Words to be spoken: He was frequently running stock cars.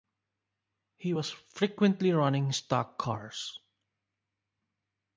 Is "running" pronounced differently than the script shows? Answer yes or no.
no